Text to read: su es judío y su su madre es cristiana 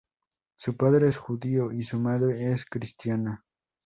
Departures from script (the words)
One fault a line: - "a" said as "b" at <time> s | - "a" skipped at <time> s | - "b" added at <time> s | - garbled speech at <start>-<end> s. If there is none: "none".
- "padre" added at 0.8 s
- "su" skipped at 2.0 s